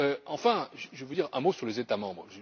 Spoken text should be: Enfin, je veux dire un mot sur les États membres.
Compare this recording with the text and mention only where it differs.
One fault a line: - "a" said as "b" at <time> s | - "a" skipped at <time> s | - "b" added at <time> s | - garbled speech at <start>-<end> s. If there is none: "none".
none